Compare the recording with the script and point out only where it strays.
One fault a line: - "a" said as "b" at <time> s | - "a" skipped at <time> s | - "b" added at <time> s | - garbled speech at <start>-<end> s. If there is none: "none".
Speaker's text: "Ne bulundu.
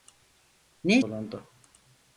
none